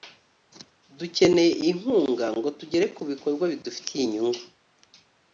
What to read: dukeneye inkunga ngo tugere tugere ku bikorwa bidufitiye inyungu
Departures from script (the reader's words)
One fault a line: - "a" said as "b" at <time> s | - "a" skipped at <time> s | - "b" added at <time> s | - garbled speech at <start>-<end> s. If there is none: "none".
- "tugere" skipped at 2.9 s